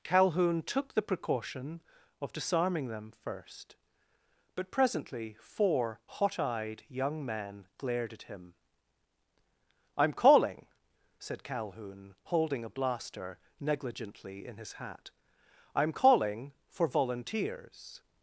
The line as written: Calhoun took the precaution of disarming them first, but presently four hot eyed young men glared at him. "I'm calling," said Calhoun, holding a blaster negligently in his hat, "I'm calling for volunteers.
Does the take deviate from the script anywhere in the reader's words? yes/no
no